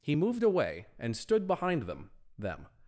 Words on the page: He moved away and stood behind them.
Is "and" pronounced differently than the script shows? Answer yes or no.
no